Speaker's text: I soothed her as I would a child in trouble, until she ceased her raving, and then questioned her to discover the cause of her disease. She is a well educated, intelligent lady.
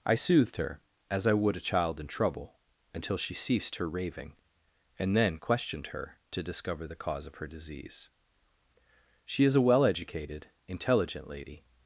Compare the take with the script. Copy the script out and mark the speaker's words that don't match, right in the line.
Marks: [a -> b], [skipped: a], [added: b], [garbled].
I soothed her as I would a child in trouble, until she ceased her raving, and then questioned her to discover the cause of her disease. She is a well educated, intelligent lady.